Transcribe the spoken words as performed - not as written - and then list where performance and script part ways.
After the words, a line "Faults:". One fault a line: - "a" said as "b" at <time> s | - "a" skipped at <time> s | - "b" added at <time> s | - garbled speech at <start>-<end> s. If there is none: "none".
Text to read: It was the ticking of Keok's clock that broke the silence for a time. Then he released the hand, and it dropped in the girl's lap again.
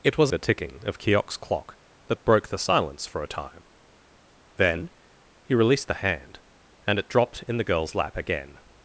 It was the ticking of Keok's clock that broke the silence for a time. Then he released the hand, and it dropped in the girl's lap again.
Faults:
none